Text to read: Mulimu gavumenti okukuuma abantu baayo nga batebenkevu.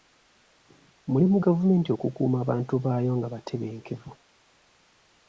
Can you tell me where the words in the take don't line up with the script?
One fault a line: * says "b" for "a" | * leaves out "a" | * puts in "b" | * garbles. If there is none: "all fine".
all fine